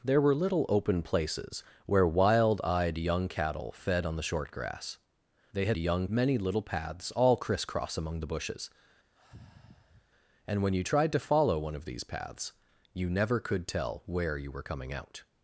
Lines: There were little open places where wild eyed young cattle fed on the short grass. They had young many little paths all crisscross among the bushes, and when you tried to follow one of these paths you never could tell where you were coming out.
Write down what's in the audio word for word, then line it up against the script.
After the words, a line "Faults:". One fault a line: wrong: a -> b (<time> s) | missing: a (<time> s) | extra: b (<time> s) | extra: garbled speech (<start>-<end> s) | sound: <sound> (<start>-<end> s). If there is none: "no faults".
There were little open places where wild eyed young cattle fed on the short grass. They had young many little paths all crisscross among the bushes, and when you tried to follow one of these paths you never could tell where you were coming out.
Faults:
sound: sigh (9.2-10.1 s)